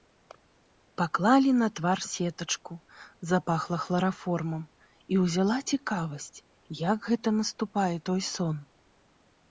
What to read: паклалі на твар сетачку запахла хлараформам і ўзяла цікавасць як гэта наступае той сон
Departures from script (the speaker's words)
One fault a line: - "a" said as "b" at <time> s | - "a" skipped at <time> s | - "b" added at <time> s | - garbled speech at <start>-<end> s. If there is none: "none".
none